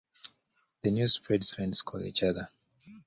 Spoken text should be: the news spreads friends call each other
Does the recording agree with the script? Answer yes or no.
yes